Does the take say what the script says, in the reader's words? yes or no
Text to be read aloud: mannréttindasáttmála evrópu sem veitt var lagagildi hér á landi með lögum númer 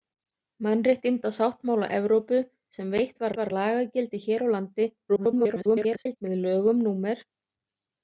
no